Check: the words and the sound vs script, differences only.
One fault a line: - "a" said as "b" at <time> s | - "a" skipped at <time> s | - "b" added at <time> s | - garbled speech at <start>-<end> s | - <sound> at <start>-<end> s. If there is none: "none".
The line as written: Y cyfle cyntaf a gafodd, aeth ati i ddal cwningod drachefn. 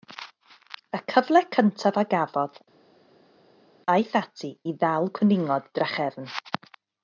none